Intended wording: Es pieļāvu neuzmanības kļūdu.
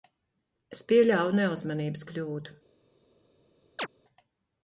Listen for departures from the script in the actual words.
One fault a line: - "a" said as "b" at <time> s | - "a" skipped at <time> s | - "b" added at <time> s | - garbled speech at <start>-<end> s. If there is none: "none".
none